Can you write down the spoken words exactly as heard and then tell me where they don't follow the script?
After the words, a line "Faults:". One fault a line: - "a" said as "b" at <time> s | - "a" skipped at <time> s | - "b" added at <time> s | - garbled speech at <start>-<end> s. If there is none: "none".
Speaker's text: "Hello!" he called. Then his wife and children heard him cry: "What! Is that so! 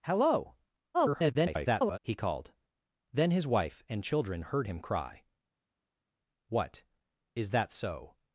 "Hello!" [garbled] he called. Then his wife and children heard him cry: "What! Is that so!
Faults:
- garbled speech at 0.9-2.0 s